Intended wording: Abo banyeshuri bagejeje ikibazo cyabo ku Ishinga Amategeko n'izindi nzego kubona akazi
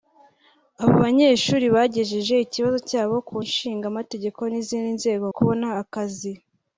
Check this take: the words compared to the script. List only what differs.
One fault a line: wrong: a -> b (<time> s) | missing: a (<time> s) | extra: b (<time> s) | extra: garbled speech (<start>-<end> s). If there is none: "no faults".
no faults